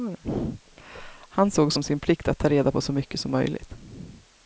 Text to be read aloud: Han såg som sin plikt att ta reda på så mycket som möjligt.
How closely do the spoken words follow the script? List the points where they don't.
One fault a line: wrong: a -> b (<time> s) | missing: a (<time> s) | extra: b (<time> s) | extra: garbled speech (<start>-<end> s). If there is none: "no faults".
no faults